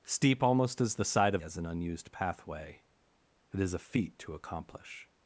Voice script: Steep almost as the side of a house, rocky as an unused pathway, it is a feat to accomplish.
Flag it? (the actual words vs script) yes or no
yes